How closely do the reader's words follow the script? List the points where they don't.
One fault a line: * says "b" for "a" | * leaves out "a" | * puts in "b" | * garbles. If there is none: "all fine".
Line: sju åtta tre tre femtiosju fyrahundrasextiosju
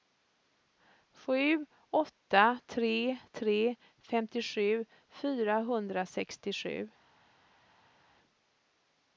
all fine